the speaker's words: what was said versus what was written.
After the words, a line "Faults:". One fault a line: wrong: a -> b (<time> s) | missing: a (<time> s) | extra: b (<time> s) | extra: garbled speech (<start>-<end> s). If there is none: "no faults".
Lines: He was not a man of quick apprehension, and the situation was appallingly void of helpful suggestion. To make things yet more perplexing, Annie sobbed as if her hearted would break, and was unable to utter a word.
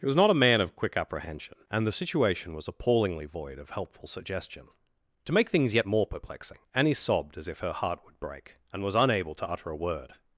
He was not a man of quick apprehension, and the situation was appallingly void of helpful suggestion. To make things yet more perplexing, Annie sobbed as if her heart would break, and was unable to utter a word.
Faults:
wrong: hearted -> heart (7.7 s)